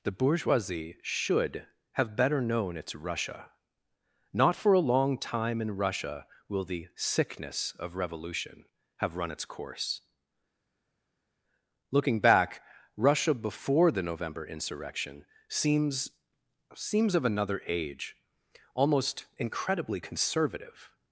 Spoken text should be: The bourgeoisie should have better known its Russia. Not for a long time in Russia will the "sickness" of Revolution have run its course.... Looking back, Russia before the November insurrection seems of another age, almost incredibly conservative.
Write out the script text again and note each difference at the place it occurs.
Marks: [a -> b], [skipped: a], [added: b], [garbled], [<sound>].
The bourgeoisie should have better known its Russia. Not for a long time in Russia will the "sickness" of Revolution have run its course.... Looking back, Russia before the November insurrection seems [added: seems] of another age, almost incredibly conservative.